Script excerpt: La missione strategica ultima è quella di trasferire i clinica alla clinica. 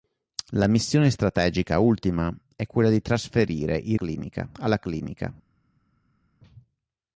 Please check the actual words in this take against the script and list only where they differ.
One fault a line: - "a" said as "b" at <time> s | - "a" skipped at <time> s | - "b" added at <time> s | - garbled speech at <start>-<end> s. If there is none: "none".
none